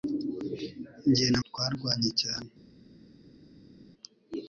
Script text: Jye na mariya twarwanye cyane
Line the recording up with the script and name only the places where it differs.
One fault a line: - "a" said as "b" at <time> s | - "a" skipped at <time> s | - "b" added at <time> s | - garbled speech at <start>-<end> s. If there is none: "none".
- "mariya" skipped at 1.4 s